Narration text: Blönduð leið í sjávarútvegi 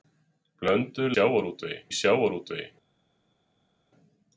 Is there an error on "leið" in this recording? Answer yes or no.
yes